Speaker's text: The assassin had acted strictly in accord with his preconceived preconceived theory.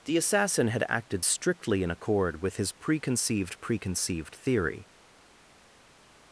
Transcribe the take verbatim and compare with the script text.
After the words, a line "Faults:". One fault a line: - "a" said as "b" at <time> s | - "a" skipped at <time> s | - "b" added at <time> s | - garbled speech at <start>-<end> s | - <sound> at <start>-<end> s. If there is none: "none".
The assassin had acted strictly in accord with his preconceived preconceived theory.
Faults:
none